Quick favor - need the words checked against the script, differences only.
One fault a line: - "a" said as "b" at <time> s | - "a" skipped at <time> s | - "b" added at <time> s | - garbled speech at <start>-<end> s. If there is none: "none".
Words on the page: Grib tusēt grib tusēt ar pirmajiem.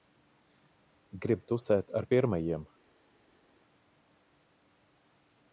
- "grib tusēt" skipped at 1.9 s